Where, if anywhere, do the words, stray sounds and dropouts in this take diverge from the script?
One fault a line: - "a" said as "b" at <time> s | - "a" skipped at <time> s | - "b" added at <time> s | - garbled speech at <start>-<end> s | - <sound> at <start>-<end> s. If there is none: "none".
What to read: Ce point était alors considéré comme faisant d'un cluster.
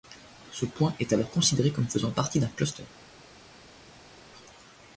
- "était" said as "est" at 1.0 s
- "partie" added at 2.1 s